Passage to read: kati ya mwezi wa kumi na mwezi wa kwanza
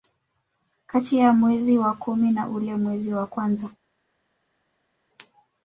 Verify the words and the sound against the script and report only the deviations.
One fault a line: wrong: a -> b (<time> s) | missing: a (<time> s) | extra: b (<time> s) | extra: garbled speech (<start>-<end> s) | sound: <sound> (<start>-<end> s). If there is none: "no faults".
extra: ule (2.5 s)